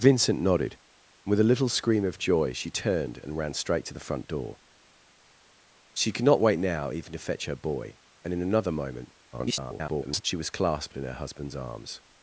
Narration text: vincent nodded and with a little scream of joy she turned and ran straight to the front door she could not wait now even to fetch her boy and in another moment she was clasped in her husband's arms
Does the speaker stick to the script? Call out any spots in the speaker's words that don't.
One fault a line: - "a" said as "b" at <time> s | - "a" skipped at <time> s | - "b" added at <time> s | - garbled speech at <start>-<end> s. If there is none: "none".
- garbled speech at 9.3-10.2 s